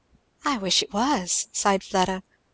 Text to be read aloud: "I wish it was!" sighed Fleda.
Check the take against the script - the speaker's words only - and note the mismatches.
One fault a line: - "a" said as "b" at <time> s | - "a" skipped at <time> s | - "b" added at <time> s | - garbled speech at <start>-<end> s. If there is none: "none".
none